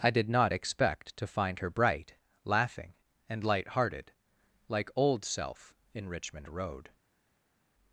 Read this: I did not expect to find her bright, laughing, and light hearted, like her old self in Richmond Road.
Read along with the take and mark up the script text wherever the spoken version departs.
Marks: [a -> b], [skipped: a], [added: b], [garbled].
I did not expect to find her bright, laughing, and light hearted, like [skipped: her] old self in Richmond Road.